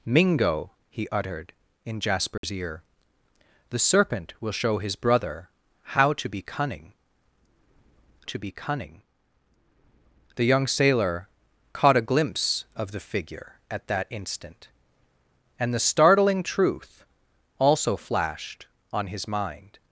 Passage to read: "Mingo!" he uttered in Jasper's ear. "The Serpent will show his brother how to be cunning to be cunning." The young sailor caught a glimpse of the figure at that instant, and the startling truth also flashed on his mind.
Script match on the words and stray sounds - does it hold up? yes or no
no